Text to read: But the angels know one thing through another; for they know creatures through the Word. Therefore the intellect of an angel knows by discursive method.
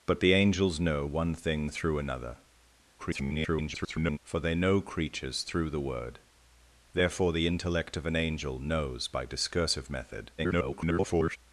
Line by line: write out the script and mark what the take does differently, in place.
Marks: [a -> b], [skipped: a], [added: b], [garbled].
But the angels know one thing through another; [garbled] for they know creatures through the Word. Therefore the intellect of an angel knows by discursive method. [garbled]